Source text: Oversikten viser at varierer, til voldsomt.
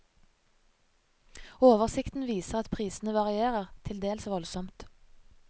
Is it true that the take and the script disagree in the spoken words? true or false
true